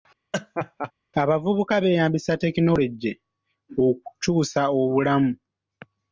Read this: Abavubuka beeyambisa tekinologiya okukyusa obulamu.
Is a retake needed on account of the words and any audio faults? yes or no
yes